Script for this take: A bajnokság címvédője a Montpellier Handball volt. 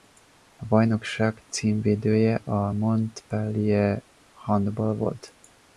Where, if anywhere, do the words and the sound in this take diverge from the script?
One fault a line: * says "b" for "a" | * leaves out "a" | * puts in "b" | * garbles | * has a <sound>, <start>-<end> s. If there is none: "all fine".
all fine